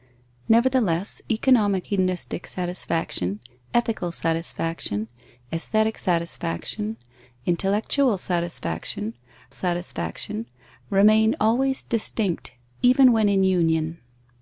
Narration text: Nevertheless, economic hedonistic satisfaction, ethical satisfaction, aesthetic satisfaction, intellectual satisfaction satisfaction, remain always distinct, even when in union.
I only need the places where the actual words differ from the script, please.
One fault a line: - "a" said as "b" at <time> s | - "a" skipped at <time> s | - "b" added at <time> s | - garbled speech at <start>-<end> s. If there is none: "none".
none